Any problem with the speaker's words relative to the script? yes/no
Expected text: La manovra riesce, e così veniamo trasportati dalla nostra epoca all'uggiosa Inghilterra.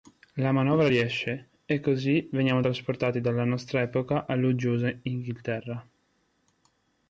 no